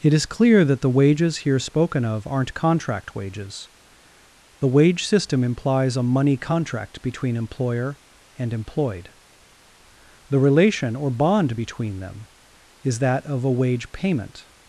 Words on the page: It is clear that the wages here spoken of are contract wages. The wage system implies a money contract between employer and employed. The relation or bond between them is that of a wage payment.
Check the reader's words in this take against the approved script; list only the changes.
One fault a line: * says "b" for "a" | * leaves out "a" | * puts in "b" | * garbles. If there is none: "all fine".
* says "aren't" for "are"